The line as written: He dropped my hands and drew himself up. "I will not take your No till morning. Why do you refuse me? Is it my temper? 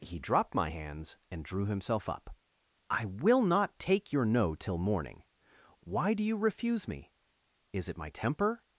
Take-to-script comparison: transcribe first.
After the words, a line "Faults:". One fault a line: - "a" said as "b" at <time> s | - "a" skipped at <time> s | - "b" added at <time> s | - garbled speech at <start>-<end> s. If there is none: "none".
He dropped my hands and drew himself up. "I will not take your No till morning. Why do you refuse me? Is it my temper?
Faults:
none